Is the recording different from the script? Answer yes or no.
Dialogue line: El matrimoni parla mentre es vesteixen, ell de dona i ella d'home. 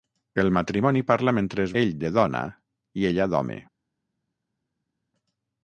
yes